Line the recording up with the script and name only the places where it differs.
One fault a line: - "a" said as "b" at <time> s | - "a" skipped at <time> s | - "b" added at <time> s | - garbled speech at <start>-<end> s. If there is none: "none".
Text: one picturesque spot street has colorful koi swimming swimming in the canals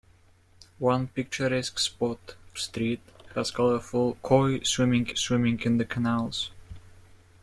none